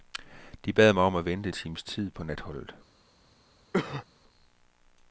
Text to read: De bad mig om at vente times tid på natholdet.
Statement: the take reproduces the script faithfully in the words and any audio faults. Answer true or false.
false